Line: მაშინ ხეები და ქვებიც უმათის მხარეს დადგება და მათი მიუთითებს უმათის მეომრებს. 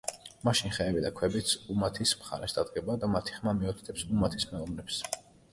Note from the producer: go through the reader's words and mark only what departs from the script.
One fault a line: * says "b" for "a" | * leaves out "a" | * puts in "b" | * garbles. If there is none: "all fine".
* puts in "ხმა"